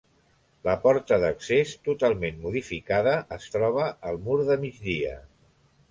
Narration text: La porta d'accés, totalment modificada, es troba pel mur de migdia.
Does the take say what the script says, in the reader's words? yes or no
no